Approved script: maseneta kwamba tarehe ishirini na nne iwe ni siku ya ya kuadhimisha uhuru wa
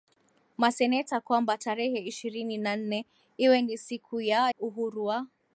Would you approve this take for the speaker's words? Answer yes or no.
no